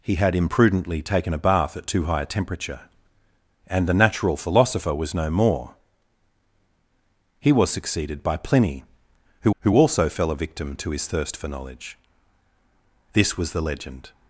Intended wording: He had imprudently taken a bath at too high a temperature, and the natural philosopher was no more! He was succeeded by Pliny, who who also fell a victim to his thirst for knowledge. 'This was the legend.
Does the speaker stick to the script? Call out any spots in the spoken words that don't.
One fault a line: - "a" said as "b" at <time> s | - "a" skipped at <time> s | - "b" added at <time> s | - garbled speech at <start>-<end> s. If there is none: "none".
none